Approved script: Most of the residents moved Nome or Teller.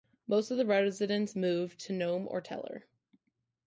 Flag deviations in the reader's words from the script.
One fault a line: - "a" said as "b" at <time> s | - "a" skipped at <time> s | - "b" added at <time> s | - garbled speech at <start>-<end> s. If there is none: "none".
- "to" added at 1.8 s